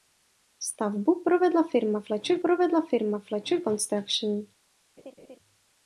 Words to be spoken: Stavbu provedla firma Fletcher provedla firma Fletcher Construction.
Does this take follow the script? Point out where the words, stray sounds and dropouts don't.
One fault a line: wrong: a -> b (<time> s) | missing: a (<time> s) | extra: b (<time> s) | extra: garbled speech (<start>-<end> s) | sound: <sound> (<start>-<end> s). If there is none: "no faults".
sound: laugh (5.0-5.4 s)